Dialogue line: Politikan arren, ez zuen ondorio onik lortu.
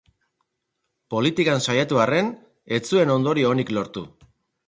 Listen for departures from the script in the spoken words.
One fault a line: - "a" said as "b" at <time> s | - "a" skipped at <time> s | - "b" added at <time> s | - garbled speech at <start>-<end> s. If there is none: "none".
- "saiatu" added at 1.6 s